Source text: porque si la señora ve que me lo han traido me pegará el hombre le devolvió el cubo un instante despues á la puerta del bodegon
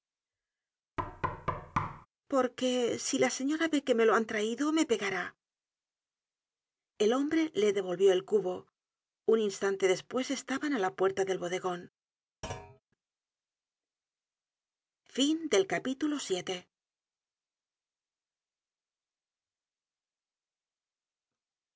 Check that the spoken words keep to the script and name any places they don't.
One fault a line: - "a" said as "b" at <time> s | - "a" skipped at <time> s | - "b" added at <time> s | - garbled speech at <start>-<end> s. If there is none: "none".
- "estaban" added at 10.4 s